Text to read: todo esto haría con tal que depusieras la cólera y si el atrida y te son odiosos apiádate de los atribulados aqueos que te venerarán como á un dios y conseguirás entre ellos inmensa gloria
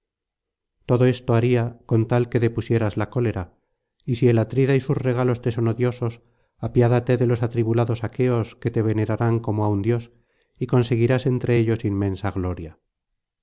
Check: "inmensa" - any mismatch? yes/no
no